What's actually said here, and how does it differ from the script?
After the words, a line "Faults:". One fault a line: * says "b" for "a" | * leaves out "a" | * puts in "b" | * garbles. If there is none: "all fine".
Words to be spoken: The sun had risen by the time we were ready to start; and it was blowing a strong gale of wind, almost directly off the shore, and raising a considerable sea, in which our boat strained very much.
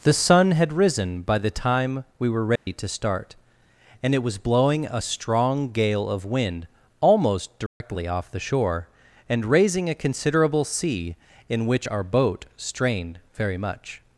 The sun had risen by the time we were ready to start; and it was blowing a strong gale of wind, almost directly off the shore, and raising a considerable sea, in which our boat strained very much.
Faults:
all fine